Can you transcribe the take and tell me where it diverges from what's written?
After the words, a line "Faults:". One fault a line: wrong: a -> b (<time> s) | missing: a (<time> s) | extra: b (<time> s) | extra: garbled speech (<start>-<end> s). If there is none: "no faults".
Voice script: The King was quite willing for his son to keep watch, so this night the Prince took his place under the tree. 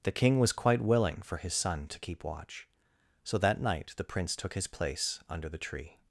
The King was quite willing for his son to keep watch, so that night the Prince took his place under the tree.
Faults:
wrong: this -> that (3.4 s)